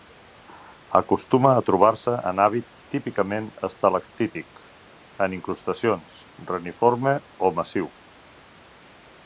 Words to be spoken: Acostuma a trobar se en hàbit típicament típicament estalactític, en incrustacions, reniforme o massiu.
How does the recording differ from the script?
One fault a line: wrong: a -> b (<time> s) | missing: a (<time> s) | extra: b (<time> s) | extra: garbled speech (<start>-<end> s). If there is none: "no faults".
missing: típicament (3.5 s)